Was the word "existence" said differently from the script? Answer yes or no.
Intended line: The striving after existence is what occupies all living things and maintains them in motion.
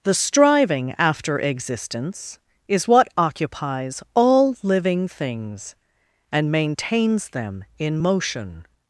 no